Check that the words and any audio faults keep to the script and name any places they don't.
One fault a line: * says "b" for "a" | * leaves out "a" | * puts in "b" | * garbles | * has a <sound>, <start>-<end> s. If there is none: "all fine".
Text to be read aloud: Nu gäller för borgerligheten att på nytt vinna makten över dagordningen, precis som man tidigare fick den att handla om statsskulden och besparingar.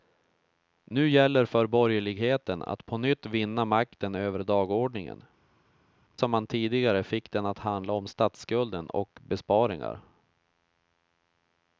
* leaves out "precis"